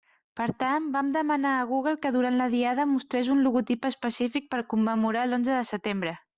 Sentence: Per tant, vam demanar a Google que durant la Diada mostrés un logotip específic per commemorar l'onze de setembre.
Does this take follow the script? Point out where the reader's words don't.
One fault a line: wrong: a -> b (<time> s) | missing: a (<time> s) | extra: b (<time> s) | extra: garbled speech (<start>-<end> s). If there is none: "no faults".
no faults